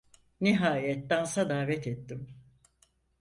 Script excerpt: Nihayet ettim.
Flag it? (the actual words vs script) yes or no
yes